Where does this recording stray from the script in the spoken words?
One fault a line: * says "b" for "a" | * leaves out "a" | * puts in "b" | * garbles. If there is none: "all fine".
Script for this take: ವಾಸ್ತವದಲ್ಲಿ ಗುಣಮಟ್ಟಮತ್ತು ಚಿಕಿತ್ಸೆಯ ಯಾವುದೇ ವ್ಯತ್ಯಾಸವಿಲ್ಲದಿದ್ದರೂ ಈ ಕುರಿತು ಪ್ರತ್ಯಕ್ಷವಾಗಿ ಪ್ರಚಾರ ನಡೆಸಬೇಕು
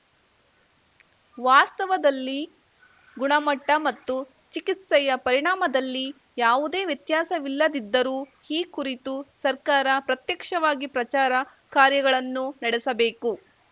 * puts in "ಪರಿಣಾಮದಲ್ಲಿ"
* puts in "ಸರ್ಕಾರ"
* puts in "ಕಾರ್ಯಗಳನ್ನು"